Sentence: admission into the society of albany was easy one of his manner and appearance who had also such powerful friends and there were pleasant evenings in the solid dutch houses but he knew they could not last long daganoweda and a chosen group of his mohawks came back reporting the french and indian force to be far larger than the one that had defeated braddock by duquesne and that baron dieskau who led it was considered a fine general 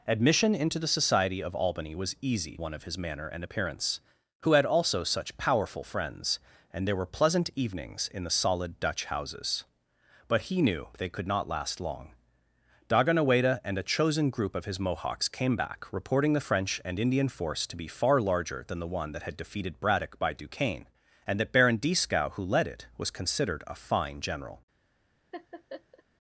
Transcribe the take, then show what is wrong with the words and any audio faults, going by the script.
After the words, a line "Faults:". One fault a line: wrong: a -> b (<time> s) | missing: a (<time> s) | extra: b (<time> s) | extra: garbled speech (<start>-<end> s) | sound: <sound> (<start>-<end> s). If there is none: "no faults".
admission into the society of albany was easy one of his manner and appearance who had also such powerful friends and there were pleasant evenings in the solid dutch houses but he knew they could not last long daganoweda and a chosen group of his mohawks came back reporting the french and indian force to be far larger than the one that had defeated braddock by duquesne and that baron dieskau who led it was considered a fine general
Faults:
sound: laugh (25.3-26.0 s)